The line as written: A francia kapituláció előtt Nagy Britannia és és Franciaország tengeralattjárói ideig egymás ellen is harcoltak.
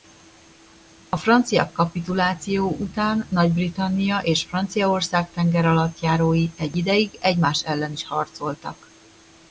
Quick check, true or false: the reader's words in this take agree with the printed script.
false